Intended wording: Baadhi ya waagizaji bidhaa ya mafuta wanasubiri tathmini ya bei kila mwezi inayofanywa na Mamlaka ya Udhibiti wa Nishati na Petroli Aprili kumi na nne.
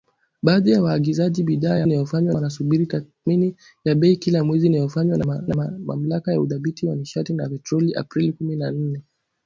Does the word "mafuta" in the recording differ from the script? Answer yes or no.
yes